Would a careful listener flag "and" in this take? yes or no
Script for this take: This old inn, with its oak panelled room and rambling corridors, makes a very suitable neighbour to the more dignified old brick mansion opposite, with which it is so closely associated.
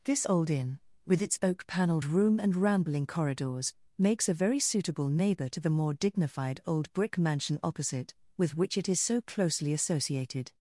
no